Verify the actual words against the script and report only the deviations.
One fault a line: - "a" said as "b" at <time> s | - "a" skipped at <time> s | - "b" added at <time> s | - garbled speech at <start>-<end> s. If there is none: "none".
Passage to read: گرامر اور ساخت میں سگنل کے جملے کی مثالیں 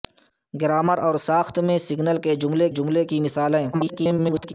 - "جملے" added at 2.7 s
- garbled speech at 3.7-4.5 s